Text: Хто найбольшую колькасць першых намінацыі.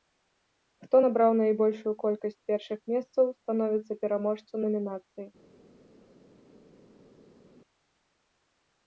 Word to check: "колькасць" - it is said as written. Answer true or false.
true